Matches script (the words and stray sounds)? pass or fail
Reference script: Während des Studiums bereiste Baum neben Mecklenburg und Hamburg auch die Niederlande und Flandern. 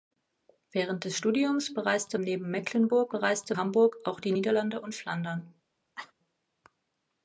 fail